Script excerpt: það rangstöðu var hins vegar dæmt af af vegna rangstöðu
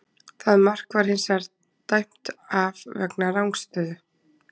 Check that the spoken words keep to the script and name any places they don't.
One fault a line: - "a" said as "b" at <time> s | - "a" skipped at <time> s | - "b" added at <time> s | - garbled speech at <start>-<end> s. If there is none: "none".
- "rangstöðu" said as "mark" at 0.7 s
- "af" skipped at 2.8 s